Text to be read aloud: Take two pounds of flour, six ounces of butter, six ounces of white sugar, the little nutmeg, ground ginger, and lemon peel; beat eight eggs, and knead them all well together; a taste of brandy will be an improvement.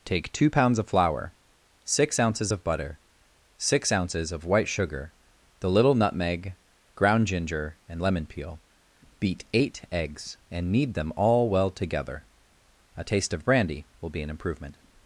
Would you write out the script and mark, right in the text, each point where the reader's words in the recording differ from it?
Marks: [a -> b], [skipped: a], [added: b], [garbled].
Take two pounds of flour, six ounces of butter, six ounces of white sugar, the little nutmeg, ground ginger, and lemon peel; beat eight eggs, and knead them all well together; a taste of brandy will be an improvement.